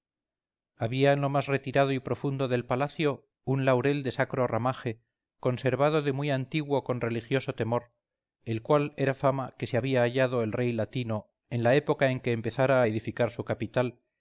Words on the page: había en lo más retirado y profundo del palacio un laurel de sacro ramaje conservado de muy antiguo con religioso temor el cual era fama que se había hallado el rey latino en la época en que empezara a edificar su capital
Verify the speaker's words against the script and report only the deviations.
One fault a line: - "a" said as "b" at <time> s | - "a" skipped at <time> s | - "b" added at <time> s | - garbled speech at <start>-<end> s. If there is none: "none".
none